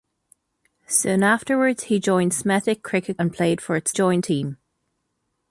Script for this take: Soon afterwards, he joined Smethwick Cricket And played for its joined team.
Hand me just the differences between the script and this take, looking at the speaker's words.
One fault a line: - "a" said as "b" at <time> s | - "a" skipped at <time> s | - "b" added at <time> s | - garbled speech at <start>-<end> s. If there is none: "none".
none